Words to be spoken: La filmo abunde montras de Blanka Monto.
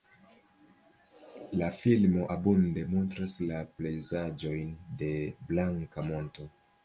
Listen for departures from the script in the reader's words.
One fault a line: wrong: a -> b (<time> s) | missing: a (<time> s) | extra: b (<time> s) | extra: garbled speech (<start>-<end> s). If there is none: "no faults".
extra: la pejzaĝojn (3.5 s)